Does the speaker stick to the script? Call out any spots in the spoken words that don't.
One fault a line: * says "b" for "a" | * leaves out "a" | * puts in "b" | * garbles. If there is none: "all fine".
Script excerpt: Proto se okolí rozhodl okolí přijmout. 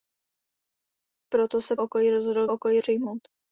all fine